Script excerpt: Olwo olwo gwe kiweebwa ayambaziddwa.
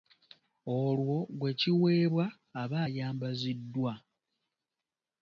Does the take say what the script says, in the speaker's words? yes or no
no